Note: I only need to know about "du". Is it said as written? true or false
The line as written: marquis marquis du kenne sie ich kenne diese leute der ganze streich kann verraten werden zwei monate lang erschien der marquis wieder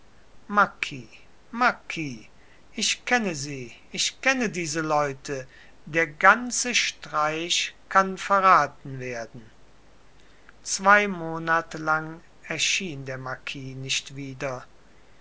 false